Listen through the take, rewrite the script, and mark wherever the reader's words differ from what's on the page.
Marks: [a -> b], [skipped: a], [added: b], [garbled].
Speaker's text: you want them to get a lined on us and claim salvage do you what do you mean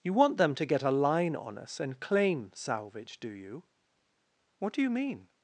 you want them to get a [lined -> line] on us and claim salvage do you what do you mean